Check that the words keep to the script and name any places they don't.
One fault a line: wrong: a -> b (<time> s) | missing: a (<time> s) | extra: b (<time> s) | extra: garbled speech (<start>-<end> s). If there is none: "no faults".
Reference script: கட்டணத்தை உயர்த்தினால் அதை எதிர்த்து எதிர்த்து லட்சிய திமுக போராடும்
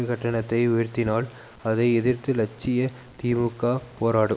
missing: எதிர்த்து (2.3 s)